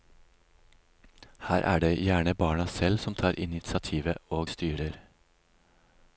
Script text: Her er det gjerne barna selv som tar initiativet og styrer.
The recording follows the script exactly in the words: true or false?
true